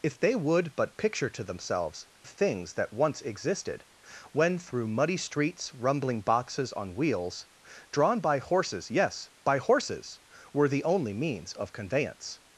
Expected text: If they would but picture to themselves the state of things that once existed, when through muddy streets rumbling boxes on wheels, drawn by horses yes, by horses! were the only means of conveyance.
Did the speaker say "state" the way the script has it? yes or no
no